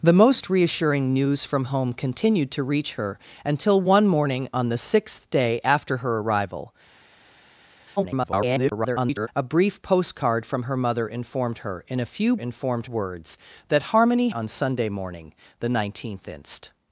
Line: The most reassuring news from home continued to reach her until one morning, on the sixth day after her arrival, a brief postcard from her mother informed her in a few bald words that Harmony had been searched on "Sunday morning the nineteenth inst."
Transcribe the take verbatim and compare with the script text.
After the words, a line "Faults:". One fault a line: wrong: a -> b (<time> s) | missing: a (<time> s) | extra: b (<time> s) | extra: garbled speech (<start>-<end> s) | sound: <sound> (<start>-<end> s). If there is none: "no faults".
The most reassuring news from home continued to reach her until one morning, on the sixth day after her arrival, [garbled] a brief postcard from her mother informed her in a few informed words that Harmony on "Sunday morning the nineteenth inst."
Faults:
extra: garbled speech (8.0-9.3 s)
wrong: bald -> informed (12.4 s)
missing: had been searched (14.3 s)